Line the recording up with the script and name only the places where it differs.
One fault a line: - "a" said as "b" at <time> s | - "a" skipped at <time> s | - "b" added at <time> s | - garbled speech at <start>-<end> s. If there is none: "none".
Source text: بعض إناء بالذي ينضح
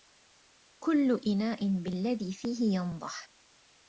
- "بعض" said as "كل" at 0.8 s
- "فيه" added at 2.3 s